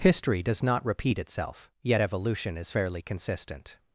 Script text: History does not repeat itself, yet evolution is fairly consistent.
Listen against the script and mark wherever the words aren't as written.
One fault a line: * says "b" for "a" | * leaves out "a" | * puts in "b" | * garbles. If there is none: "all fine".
all fine